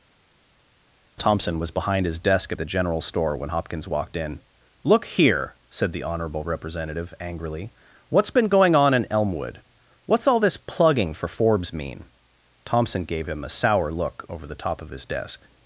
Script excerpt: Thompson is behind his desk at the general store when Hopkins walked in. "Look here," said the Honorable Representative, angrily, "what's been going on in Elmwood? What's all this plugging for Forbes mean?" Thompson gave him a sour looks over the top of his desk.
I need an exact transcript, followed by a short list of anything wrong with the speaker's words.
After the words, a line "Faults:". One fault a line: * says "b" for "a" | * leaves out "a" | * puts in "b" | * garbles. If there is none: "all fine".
Thompson was behind his desk at the general store when Hopkins walked in. "Look here," said the Honorable Representative, angrily, "what's been going on in Elmwood? What's all this plugging for Forbes mean?" Thompson gave him a sour look over the top of his desk.
Faults:
* says "was" for "is"
* says "look" for "looks"